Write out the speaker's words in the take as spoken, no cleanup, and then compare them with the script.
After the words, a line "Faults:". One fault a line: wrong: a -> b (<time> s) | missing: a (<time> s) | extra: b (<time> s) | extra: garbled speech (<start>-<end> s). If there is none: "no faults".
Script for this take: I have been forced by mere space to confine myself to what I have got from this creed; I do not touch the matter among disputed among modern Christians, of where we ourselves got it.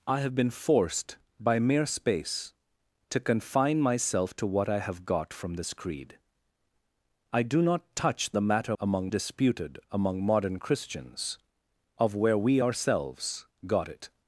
I have been forced by mere space to confine myself to what I have got from this creed; I do not touch the matter among disputed among modern Christians, of where we ourselves got it.
Faults:
no faults